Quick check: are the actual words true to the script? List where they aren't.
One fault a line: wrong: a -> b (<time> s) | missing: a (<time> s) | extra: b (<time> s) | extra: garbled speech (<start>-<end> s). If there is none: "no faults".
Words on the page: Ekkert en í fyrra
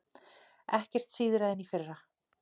extra: síðra (1.2 s)